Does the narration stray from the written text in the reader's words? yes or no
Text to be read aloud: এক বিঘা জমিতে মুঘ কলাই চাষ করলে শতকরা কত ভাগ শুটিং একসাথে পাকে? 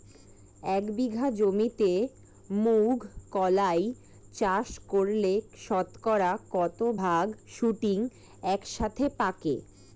no